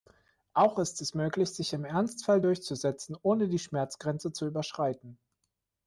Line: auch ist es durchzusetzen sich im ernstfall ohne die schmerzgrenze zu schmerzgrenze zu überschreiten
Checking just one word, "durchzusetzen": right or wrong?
wrong